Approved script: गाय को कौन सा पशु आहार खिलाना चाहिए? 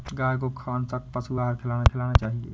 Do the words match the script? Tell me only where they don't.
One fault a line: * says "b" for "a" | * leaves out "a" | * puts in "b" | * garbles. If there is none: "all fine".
* puts in "खिलाना"